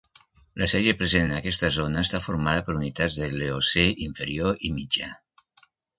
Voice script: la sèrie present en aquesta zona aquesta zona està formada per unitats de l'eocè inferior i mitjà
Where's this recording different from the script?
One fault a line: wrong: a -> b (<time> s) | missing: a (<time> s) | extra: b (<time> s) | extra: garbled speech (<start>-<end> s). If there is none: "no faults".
missing: aquesta zona (2.0 s)